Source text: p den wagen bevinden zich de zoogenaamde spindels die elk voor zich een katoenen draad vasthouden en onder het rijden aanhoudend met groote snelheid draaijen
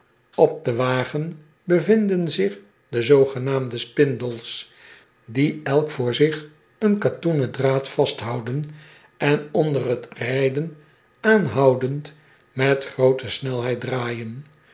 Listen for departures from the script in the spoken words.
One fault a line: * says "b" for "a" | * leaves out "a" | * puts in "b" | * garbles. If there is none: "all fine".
all fine